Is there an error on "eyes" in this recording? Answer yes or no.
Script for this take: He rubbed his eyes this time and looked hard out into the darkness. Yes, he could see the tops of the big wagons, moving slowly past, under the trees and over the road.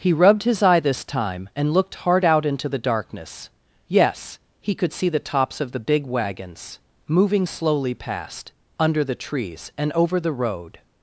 yes